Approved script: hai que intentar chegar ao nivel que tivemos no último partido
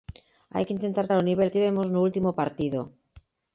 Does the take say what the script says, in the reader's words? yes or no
no